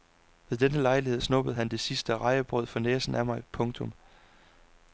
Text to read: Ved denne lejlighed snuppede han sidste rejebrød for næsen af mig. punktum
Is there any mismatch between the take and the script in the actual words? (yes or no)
yes